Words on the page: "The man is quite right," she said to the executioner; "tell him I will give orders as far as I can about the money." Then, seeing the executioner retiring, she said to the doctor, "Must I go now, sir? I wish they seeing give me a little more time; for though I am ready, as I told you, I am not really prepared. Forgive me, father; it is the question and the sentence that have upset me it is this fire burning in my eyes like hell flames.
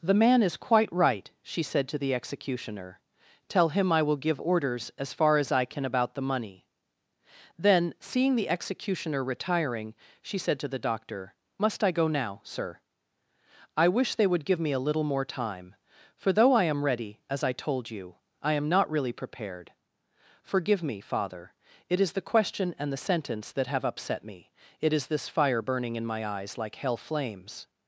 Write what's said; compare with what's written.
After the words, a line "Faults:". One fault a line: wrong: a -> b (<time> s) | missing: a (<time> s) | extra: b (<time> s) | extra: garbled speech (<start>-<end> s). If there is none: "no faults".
"The man is quite right," she said to the executioner; "tell him I will give orders as far as I can about the money." Then, seeing the executioner retiring, she said to the doctor, "Must I go now, sir? I wish they would give me a little more time; for though I am ready, as I told you, I am not really prepared. Forgive me, father; it is the question and the sentence that have upset me it is this fire burning in my eyes like hell flames.
Faults:
wrong: seeing -> would (14.2 s)